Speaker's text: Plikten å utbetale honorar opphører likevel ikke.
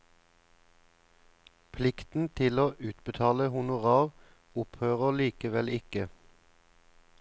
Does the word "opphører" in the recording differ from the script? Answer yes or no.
no